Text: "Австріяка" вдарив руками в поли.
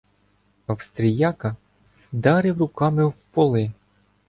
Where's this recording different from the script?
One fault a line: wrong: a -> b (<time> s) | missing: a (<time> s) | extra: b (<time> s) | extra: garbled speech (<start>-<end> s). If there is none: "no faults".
no faults